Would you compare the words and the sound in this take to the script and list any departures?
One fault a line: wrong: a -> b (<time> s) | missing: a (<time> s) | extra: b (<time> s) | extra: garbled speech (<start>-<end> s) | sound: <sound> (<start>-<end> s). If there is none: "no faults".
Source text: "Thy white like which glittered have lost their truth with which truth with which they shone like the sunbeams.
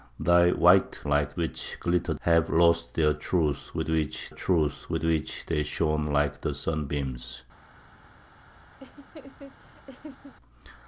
sound: laugh (8.8-10.3 s)